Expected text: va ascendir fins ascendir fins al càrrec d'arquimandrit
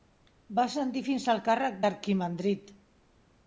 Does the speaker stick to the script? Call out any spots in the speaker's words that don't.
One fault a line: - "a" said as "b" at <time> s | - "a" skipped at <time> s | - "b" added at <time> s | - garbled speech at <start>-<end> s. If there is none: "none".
- "ascendir fins" skipped at 1.3 s